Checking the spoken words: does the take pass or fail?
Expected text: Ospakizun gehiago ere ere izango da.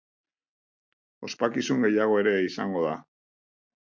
fail